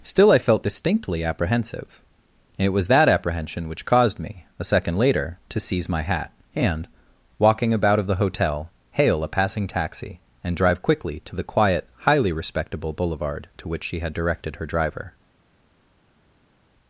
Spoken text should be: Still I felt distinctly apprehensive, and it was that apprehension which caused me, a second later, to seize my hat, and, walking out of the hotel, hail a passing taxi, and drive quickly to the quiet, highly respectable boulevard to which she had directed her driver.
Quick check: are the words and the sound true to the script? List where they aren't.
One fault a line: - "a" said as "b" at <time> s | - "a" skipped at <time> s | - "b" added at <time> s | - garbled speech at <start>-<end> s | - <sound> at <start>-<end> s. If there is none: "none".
- "out" said as "about" at 7.7 s